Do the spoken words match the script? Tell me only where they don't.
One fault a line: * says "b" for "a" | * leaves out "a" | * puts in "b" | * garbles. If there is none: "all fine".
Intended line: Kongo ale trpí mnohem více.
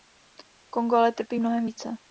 all fine